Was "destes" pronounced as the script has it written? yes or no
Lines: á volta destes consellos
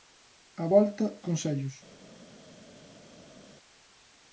no